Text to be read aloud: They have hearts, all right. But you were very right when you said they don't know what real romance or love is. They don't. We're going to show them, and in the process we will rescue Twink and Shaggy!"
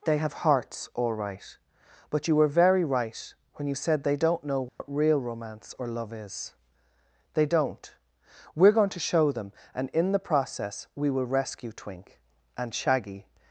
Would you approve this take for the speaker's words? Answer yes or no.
yes